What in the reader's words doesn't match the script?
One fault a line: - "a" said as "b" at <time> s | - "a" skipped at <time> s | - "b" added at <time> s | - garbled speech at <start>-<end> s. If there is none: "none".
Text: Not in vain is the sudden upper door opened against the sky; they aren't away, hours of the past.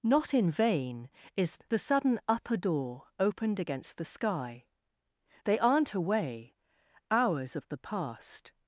none